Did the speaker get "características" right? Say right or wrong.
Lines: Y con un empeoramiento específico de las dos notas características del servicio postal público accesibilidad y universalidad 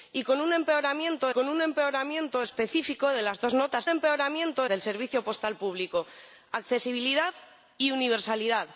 wrong